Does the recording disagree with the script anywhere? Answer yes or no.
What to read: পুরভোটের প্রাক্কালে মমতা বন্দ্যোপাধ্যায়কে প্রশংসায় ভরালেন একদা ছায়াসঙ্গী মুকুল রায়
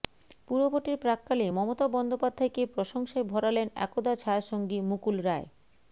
no